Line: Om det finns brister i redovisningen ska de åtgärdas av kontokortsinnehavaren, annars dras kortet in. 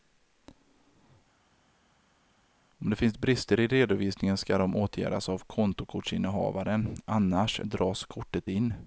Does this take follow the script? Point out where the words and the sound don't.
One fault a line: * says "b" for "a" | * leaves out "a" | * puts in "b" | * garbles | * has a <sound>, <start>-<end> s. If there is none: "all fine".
all fine